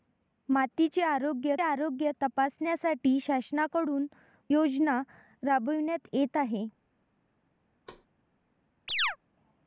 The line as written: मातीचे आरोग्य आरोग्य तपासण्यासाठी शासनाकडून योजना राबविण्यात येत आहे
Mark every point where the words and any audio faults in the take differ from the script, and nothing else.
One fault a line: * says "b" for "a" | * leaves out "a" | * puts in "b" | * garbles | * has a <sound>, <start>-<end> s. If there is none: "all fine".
* has a thud, 7.9-8.1 s
* has a chirp, 8.9-9.2 s